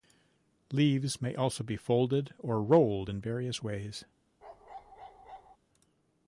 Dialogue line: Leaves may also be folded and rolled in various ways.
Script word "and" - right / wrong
wrong